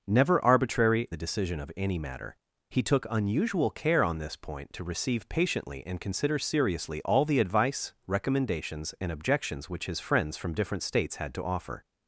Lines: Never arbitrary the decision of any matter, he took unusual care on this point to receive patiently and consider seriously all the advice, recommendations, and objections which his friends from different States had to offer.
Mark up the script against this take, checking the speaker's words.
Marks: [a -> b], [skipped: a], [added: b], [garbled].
Never arbitrary the decision of any matter, he took unusual care on this point to receive patiently and consider seriously all the advice, recommendations, and objections which his friends from different States had to offer.